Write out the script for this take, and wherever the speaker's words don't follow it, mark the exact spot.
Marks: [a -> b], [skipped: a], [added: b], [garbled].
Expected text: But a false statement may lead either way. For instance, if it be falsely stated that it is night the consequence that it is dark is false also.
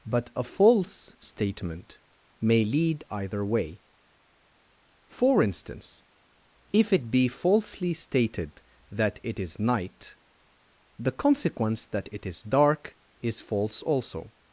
But a false statement may lead either way. For instance, if it be falsely stated that it is night the consequence that it is dark is false also.